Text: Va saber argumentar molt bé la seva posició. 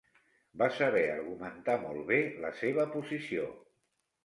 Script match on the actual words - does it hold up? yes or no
yes